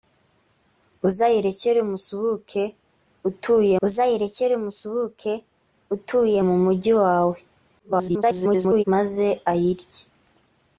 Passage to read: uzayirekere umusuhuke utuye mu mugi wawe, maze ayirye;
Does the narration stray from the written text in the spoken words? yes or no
yes